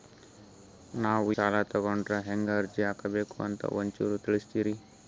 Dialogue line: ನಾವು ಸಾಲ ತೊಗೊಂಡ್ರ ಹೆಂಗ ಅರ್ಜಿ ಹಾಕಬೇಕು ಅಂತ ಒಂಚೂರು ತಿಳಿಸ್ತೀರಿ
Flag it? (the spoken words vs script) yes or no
no